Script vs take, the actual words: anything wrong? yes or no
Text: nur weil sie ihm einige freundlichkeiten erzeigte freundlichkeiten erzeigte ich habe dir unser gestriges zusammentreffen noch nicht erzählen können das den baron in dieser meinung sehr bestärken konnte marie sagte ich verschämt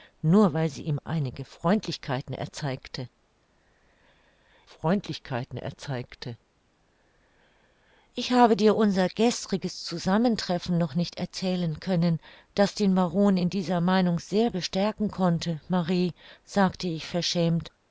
no